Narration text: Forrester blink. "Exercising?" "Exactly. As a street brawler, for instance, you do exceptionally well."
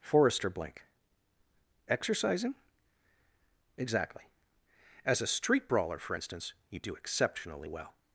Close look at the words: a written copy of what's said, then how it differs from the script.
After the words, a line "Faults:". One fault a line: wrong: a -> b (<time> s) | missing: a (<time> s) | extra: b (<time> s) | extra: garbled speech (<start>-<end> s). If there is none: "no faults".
Forrester blink. "Exercising?" "Exactly. As a street brawler, for instance, you do exceptionally well."
Faults:
no faults